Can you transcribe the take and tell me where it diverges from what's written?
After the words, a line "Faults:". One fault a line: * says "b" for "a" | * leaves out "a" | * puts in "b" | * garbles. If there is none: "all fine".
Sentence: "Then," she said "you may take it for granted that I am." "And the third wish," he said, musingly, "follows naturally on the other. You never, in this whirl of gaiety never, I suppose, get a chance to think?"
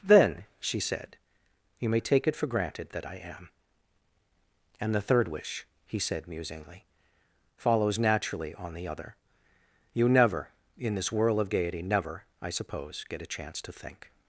"Then," she said "you may take it for granted that I am." "And the third wish," he said, musingly, "follows naturally on the other. You never, in this whirl of gaiety never, I suppose, get a chance to think?"
Faults:
all fine